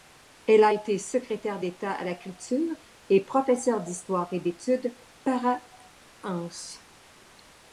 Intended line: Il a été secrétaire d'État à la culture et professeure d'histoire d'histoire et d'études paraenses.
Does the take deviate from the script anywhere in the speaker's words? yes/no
yes